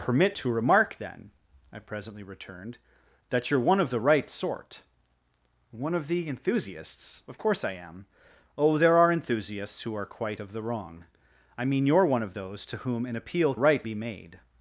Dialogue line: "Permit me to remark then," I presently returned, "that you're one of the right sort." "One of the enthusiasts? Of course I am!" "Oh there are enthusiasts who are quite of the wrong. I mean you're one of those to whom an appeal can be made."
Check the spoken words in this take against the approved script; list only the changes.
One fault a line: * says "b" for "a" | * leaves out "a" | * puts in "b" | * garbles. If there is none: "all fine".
* leaves out "me"
* says "right" for "can"